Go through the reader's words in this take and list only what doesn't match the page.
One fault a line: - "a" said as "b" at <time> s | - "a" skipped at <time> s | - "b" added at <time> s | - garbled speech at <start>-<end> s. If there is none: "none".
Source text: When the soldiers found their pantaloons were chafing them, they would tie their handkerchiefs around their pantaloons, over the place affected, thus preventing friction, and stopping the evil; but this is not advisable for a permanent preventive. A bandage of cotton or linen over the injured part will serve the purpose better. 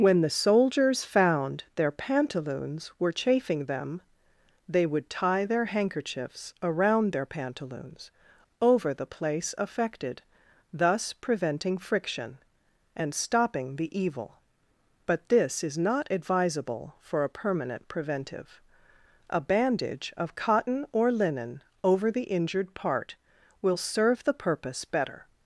none